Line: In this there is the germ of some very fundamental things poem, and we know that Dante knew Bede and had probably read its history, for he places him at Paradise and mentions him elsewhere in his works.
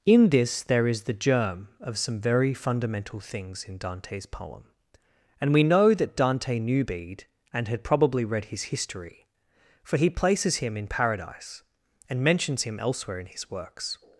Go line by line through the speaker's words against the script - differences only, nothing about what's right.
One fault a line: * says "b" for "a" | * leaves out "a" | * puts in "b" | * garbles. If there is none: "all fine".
* puts in "in Dante's"
* says "his" for "its"
* says "in" for "at"